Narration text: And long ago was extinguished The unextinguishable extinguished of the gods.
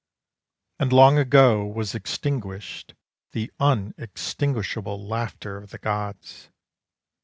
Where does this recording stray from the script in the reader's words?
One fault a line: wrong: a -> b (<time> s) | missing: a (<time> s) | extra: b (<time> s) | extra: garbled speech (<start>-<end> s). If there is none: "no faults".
wrong: extinguished -> laughter (5.0 s)